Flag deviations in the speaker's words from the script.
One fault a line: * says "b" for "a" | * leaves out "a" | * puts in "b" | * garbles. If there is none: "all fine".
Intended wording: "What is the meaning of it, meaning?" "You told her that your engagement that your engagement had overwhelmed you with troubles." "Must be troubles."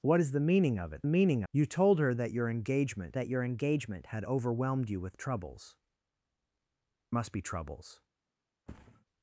all fine